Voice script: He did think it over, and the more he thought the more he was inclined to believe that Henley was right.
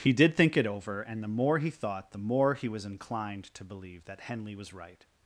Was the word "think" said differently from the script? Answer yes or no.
no